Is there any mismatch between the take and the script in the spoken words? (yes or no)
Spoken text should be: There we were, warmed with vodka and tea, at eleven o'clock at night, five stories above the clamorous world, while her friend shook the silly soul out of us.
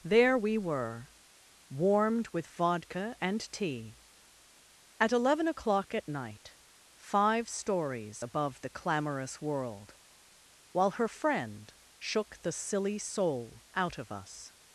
no